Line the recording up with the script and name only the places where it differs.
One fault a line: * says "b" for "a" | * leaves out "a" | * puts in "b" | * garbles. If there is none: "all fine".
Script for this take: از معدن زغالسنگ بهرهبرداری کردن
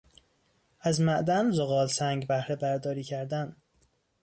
all fine